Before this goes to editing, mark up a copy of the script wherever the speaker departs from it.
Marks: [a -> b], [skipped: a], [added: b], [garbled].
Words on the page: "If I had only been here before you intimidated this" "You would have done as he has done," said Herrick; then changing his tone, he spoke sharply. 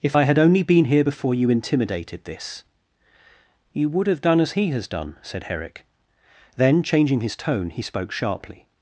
"If I had only been here before you intimidated this" "You would have done as he has done," said Herrick; then changing his tone, he spoke sharply.